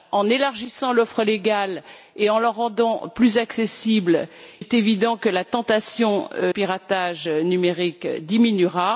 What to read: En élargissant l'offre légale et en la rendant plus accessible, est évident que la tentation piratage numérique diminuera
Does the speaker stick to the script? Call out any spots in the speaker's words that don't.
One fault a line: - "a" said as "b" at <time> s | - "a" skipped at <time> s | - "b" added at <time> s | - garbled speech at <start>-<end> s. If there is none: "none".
none